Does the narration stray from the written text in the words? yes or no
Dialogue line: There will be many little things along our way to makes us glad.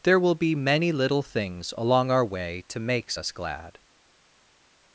no